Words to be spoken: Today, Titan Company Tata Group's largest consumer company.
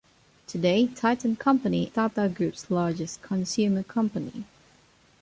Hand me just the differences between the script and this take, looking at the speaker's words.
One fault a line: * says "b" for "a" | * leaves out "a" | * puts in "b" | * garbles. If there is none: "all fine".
all fine